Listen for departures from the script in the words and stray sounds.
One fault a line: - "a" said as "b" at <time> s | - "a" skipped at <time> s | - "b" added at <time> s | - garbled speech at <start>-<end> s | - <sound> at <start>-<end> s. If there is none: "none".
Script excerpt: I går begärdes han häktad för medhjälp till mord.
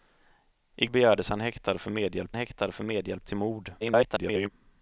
- "går" skipped at 0.8 s
- "häktad för medhjälp" added at 2.3 s
- garbled speech at 3.8-4.5 s